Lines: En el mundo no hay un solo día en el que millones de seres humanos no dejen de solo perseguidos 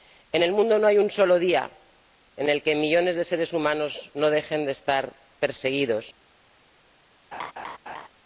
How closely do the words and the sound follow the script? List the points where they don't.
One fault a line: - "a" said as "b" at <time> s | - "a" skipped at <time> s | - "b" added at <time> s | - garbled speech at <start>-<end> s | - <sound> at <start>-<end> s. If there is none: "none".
- "solo" said as "estar" at 4.7 s
- laugh at 7.3-8.1 s